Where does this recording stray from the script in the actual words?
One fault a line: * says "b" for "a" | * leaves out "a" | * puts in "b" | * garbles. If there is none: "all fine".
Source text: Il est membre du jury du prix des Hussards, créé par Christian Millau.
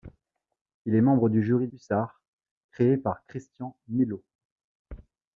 * leaves out "du prix des"